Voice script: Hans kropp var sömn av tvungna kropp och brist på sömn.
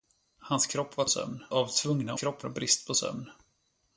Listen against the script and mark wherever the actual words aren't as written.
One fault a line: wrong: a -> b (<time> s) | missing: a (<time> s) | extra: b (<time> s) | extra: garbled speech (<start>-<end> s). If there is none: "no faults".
no faults